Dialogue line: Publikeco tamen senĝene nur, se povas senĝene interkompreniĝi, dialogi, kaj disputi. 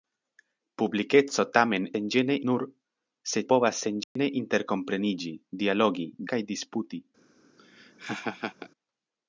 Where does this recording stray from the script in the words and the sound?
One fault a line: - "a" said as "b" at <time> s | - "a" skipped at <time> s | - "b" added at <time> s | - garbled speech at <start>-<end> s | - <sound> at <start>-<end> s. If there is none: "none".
- dropout at 4.0-4.2 s
- laugh at 7.6-8.7 s